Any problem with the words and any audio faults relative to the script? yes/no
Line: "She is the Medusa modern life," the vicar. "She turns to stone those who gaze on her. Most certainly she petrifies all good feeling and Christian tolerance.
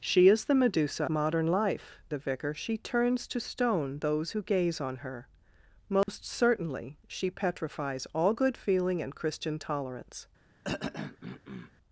yes